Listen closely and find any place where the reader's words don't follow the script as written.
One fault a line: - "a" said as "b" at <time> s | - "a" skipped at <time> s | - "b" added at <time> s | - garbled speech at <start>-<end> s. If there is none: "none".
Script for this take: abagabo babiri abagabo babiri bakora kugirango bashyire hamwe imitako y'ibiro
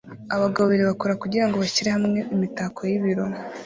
- "abagabo babiri" skipped at 0.8 s